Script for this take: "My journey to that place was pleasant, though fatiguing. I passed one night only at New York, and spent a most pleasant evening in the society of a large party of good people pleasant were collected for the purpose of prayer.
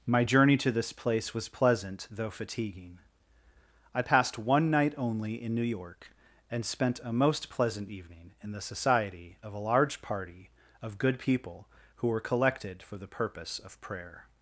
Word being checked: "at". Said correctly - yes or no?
no